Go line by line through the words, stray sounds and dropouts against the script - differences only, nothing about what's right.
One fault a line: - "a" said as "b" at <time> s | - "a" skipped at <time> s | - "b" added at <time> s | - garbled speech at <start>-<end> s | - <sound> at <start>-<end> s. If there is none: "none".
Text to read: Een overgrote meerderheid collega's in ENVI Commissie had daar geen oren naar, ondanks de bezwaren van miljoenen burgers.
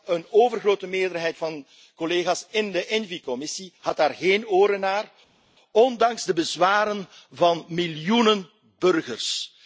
- "van" added at 1.4 s
- "de" added at 2.7 s